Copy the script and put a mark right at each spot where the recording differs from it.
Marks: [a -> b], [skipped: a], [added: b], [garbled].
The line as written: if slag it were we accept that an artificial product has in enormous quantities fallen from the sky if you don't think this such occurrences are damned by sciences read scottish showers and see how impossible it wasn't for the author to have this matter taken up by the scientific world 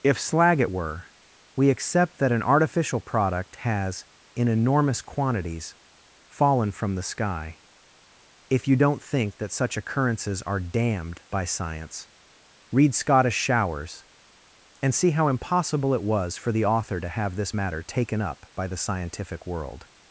if slag it were we accept that an artificial product has in enormous quantities fallen from the sky if you don't think [this -> that] such occurrences are damned by [sciences -> science] read scottish showers and see how impossible it [wasn't -> was] for the author to have this matter taken up by the scientific world